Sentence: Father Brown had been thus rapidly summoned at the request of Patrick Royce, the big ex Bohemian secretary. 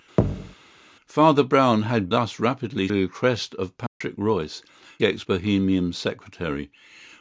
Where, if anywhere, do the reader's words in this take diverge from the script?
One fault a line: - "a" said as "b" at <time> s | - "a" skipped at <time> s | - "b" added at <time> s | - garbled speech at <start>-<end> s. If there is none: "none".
- "been" skipped at 2.1 s
- "summoned at the" skipped at 2.9 s
- "the big" skipped at 4.6 s